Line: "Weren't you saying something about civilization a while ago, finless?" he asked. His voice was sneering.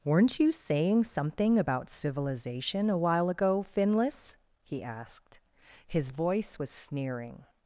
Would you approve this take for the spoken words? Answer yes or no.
yes